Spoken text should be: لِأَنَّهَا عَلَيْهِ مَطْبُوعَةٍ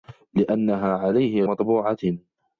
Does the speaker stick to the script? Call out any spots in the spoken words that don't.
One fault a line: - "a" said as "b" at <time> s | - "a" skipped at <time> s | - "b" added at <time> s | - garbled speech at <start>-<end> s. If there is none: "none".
none